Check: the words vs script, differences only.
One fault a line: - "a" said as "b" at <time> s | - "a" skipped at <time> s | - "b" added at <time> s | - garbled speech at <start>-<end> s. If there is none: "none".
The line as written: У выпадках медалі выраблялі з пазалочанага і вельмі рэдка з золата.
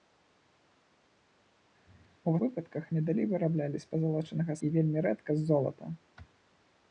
none